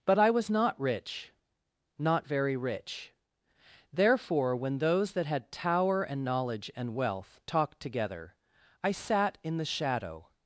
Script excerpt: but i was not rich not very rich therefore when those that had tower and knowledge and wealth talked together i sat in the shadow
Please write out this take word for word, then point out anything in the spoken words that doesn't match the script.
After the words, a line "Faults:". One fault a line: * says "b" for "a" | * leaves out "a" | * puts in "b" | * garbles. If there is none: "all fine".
but i was not rich not very rich therefore when those that had tower and knowledge and wealth talked together i sat in the shadow
Faults:
all fine